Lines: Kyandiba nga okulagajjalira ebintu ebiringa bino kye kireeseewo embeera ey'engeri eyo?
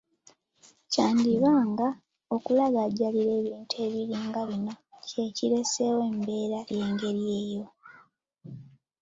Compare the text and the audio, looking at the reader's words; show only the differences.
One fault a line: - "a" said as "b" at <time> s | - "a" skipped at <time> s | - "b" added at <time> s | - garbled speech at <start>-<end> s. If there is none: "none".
none